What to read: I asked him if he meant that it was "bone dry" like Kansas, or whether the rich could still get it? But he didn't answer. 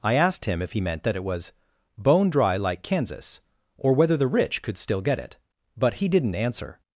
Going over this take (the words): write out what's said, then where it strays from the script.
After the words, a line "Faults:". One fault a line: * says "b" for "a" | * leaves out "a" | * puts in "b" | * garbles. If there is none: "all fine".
I asked him if he meant that it was "bone dry" like Kansas, or whether the rich could still get it? But he didn't answer.
Faults:
all fine